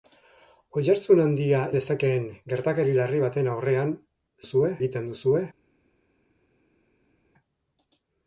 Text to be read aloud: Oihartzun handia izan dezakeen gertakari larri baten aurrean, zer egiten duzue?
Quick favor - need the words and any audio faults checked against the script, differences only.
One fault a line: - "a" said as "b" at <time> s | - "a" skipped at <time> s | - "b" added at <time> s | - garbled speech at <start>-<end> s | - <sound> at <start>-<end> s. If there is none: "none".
- "izan" skipped at 1.6 s
- "zer" said as "duzue" at 4.4 s